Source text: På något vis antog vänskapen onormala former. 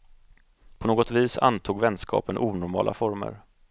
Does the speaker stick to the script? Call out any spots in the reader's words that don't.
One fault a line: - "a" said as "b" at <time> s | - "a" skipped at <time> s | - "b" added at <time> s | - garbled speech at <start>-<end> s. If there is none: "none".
none